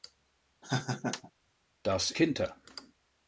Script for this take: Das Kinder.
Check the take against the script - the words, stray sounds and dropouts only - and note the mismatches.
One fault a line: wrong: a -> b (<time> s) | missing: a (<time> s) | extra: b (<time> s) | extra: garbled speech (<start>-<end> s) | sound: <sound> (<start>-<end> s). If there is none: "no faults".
sound: laugh (0.6-1.3 s)